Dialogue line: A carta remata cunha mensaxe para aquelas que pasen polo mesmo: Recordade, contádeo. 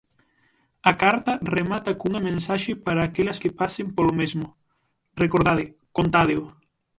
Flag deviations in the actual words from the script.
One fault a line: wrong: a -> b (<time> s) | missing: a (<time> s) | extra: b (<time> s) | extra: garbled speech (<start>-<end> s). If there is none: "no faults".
no faults